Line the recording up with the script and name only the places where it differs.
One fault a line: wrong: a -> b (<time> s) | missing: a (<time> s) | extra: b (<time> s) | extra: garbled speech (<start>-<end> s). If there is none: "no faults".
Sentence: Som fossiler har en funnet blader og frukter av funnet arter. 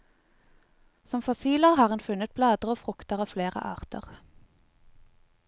wrong: funnet -> flere (3.3 s)